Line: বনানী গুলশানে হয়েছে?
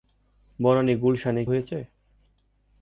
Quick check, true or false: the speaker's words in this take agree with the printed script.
true